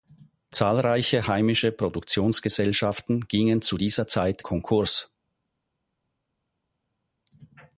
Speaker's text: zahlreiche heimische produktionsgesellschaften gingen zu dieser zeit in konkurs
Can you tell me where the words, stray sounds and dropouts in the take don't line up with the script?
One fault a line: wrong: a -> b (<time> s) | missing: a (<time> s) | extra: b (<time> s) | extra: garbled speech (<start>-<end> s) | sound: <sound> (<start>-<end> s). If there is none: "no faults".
missing: in (4.4 s)